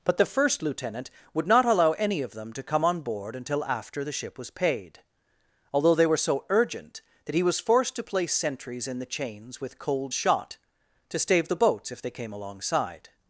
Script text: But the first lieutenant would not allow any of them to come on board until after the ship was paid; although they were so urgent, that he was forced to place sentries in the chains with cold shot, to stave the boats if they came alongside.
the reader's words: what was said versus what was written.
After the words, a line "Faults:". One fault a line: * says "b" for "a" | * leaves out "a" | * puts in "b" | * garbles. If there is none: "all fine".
But the first lieutenant would not allow any of them to come on board until after the ship was paid; although they were so urgent, that he was forced to place sentries in the chains with cold shot, to stave the boats if they came alongside.
Faults:
all fine